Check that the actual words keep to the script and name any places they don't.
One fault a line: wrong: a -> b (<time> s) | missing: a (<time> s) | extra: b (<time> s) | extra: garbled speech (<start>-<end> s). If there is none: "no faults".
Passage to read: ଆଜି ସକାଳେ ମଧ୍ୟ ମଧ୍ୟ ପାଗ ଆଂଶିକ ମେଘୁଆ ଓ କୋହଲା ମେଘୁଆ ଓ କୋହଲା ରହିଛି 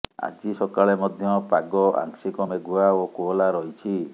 missing: ମଧ୍ୟ (1.3 s)
missing: ମେଘୁଆ ଓ କୋହଲା (3.5 s)